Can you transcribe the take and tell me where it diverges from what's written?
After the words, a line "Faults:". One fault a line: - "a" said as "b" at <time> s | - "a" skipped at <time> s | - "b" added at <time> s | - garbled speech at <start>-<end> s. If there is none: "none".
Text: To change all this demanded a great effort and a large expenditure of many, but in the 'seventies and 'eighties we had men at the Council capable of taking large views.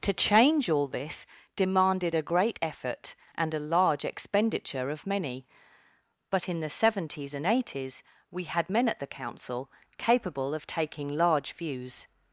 To change all this demanded a great effort and a large expenditure of many, but in the 'seventies and 'eighties we had men at the Council capable of taking large views.
Faults:
none